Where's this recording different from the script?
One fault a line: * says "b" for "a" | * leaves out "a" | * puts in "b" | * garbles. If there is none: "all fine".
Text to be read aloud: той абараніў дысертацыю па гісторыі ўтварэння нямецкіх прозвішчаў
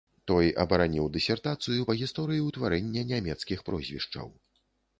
all fine